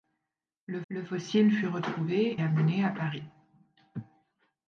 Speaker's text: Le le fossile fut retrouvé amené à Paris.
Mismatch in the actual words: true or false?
false